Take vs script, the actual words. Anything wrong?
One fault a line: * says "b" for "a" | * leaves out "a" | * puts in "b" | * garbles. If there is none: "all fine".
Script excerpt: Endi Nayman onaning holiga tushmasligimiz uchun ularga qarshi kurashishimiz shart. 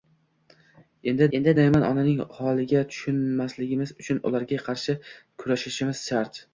* puts in "endi"